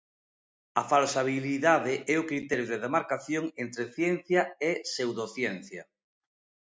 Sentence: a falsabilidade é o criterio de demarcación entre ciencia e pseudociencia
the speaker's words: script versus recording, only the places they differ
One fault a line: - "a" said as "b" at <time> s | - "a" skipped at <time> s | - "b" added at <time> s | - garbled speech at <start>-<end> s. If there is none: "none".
none